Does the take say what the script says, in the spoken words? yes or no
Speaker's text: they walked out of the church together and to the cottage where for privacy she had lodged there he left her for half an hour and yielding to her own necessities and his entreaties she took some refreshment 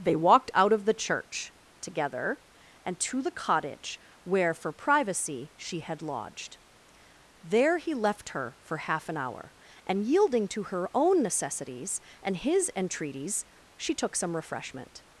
yes